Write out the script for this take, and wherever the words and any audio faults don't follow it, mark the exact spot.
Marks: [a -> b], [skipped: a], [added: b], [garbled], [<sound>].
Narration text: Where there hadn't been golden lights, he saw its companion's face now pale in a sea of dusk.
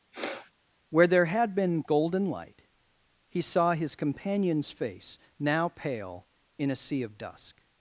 [sniff] Where there [hadn't -> had] been golden [lights, -> light] he saw [its -> his] companion's face now pale in a sea of dusk.